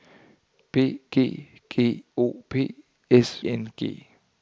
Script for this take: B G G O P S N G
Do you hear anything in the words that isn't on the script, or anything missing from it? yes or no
no